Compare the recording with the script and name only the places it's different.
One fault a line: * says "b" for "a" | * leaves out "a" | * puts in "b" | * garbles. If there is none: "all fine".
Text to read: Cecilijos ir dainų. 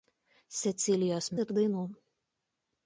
all fine